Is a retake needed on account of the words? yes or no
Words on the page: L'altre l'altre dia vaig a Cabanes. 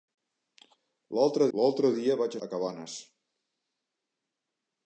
no